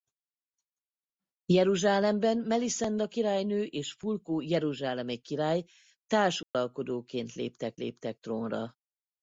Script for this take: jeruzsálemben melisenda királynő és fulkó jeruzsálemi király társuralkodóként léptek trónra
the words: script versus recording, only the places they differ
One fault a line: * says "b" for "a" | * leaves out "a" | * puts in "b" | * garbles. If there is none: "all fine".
* puts in "léptek"